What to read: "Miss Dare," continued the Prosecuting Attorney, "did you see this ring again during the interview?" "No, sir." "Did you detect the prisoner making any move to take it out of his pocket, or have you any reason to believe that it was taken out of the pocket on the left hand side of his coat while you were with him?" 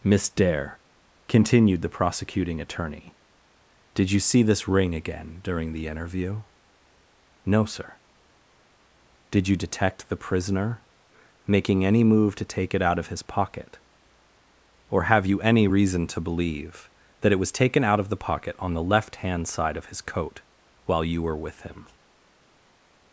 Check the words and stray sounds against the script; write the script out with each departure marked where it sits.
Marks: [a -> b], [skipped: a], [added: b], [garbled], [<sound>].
"Miss Dare," continued the Prosecuting Attorney, "did you see this ring again during the interview?" "No, sir." "Did you detect the prisoner making any move to take it out of his pocket, or have you any reason to believe that it was taken out of the pocket on the left hand side of his coat while you were with him?"